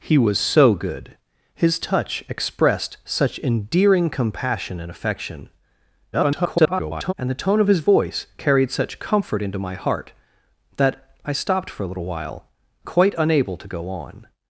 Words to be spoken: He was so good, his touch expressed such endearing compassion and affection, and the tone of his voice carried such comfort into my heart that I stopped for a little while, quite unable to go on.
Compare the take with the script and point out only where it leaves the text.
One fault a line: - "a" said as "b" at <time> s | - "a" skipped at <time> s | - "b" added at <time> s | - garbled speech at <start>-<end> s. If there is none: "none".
- garbled speech at 6.1-7.1 s